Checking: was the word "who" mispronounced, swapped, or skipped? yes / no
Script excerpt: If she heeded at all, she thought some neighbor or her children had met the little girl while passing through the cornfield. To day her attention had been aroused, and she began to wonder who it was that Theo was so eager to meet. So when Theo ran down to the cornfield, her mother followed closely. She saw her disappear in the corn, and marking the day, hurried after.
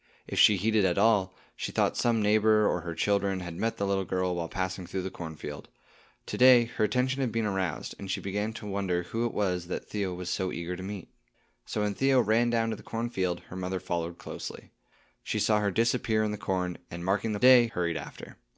no